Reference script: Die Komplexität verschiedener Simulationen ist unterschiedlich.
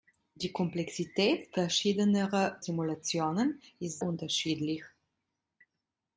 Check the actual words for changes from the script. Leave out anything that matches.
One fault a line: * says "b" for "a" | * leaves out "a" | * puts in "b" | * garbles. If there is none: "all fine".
all fine